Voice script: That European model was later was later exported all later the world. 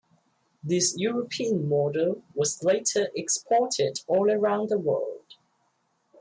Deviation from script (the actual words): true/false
true